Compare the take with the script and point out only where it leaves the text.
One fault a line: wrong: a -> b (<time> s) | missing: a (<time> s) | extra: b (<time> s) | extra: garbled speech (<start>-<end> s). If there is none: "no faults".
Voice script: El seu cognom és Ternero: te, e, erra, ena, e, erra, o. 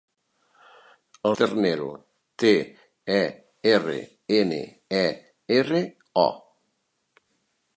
missing: seu cognom és (1.4 s)